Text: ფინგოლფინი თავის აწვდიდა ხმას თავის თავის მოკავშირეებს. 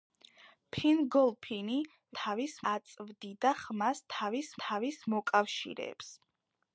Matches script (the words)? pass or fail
pass